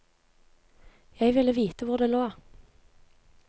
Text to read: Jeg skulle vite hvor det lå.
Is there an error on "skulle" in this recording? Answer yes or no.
yes